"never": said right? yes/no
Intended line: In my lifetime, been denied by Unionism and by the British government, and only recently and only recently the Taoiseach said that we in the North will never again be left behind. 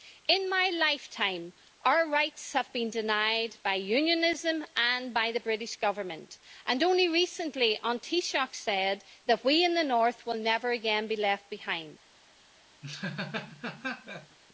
yes